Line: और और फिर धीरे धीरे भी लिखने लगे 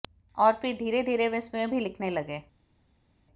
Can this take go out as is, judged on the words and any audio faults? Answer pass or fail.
fail